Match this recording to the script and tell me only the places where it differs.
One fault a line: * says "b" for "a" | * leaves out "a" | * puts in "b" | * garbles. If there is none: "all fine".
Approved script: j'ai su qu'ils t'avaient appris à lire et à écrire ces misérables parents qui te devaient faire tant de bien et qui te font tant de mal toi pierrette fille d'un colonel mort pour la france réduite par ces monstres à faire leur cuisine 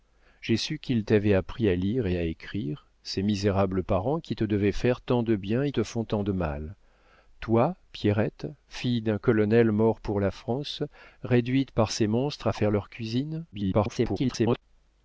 * leaves out "qui"
* garbles